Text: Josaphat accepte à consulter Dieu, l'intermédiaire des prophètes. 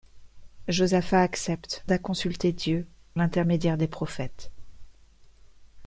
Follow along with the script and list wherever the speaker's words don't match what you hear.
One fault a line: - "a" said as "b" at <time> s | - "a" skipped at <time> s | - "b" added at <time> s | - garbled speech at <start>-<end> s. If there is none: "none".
none